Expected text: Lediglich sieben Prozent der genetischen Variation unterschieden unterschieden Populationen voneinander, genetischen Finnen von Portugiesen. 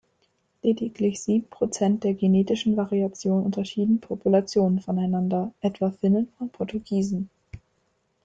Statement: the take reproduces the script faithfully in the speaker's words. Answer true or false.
false